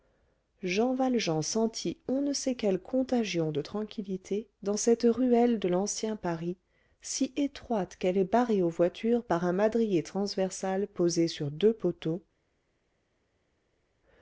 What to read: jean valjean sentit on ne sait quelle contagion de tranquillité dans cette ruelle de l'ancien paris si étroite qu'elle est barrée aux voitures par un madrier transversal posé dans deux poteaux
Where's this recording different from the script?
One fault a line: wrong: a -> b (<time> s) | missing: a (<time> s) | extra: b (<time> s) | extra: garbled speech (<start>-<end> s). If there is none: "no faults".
wrong: dans -> sur (11.3 s)